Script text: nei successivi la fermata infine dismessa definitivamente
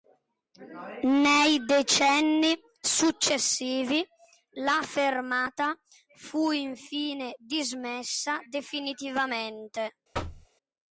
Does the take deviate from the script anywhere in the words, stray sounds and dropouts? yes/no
yes